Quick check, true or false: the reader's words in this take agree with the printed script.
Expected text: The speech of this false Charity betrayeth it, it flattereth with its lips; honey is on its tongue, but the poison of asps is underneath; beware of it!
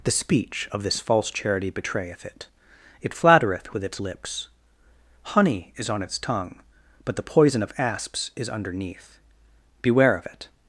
true